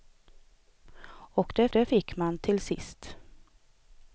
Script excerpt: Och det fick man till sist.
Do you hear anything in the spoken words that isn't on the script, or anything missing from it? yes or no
yes